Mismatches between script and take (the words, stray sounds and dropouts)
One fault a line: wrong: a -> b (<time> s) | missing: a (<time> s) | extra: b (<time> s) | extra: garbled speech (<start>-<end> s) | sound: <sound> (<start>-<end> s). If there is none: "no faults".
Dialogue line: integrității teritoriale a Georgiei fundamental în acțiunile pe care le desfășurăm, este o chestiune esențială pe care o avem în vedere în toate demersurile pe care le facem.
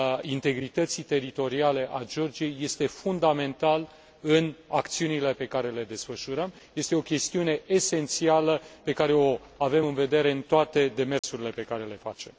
extra: este (2.6 s)
sound: dropout (11.2-11.2 s)